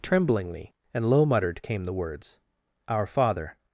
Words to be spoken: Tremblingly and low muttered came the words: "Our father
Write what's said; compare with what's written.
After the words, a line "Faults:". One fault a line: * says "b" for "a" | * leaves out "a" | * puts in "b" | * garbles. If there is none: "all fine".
Tremblingly and low muttered came the words: "Our father
Faults:
all fine